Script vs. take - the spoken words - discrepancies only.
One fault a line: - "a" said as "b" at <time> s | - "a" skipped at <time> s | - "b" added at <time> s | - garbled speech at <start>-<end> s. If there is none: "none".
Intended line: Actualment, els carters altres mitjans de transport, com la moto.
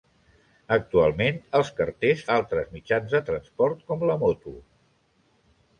none